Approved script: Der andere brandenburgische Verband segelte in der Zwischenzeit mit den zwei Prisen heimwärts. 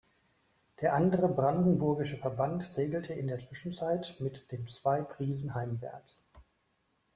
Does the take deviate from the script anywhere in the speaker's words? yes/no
no